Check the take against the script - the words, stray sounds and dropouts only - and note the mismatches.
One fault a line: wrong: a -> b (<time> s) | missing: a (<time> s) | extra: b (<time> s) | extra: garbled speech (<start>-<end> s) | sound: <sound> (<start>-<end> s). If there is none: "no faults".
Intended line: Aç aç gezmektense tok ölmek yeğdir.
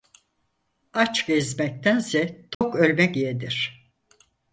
missing: aç (1.3 s)
sound: dropout (2.5-2.6 s)